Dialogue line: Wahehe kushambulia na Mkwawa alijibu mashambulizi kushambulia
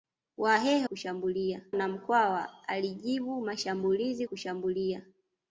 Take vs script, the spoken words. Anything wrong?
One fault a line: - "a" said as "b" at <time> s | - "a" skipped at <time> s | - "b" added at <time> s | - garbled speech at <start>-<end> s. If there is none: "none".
none